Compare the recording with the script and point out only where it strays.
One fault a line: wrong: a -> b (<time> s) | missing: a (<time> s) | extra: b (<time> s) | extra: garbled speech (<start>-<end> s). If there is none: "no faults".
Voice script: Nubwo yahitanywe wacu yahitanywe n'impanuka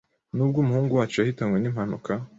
wrong: yahitanywe -> umuhungu (0.6 s)